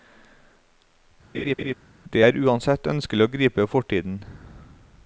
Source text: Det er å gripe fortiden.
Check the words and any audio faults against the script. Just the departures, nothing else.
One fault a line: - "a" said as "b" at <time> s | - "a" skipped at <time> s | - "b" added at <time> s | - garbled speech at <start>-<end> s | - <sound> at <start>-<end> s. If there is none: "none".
- laugh at 1.3-1.7 s
- "uansett ønskelig" added at 2.4 s